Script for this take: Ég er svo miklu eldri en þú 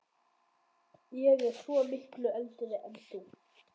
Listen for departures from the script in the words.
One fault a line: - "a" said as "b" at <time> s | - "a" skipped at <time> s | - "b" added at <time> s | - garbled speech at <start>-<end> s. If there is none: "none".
none